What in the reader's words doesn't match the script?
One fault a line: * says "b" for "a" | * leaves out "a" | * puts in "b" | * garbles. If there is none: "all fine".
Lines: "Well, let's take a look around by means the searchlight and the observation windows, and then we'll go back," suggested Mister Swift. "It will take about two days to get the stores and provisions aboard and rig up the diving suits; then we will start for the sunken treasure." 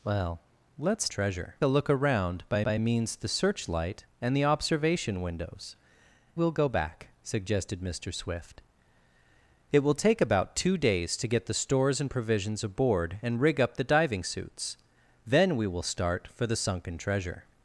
* says "treasure" for "take"
* puts in "by"
* leaves out "and then"